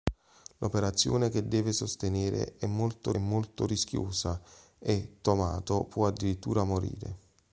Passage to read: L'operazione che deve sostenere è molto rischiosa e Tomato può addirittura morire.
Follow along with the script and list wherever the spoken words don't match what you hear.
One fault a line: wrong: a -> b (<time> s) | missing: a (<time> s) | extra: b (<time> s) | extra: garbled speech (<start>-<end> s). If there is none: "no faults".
extra: molto (3.2 s)